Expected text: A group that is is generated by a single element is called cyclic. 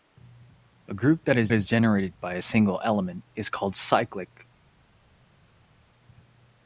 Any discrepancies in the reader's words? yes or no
no